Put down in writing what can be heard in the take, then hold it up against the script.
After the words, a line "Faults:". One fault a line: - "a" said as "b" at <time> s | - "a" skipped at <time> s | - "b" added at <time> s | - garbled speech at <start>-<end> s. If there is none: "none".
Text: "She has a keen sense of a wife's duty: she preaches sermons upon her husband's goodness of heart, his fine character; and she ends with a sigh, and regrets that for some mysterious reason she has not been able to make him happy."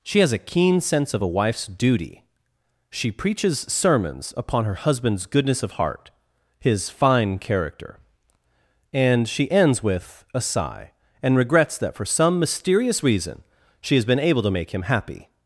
"She has a keen sense of a wife's duty: she preaches sermons upon her husband's goodness of heart, his fine character; and she ends with a sigh, and regrets that for some mysterious reason she has been able to make him happy."
Faults:
- "not" skipped at 14.0 s